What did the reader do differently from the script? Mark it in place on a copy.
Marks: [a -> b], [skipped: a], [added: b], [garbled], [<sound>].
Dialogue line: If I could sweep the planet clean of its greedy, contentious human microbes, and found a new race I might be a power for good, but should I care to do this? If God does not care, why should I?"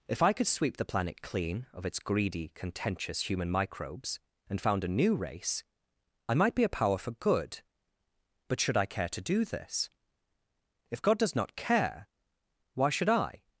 If I could sweep the planet clean of its greedy, contentious human microbes, and found a new race I might be a power for good, but should I care to do this? If God does not care, why should I?"